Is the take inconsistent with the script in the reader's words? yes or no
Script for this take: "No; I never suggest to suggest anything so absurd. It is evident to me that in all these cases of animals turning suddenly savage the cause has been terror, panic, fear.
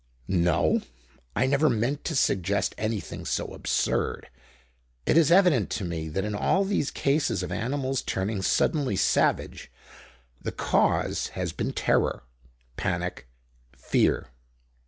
yes